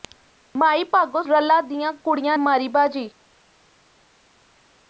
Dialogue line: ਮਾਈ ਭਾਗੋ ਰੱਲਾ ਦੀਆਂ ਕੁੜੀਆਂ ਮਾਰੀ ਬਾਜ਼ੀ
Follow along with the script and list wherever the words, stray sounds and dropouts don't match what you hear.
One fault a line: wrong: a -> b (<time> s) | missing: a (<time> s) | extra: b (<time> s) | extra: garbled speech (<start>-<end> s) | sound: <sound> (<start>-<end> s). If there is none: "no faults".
no faults